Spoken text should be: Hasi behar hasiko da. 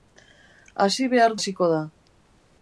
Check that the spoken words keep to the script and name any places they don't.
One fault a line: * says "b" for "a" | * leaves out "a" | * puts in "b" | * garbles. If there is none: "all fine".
all fine